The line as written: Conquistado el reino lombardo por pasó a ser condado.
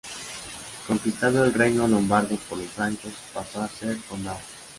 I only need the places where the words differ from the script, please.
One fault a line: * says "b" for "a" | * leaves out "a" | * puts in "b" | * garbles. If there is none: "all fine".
* puts in "los francos"